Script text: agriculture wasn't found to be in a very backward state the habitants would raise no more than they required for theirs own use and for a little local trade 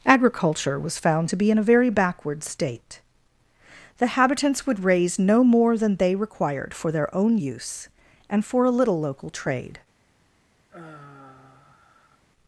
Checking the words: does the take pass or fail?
fail